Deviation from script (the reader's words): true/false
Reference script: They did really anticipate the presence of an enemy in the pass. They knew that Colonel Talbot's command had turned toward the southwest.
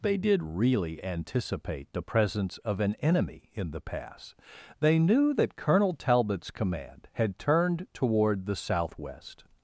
false